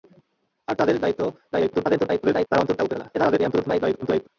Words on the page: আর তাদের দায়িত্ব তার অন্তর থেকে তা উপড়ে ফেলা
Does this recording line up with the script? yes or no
no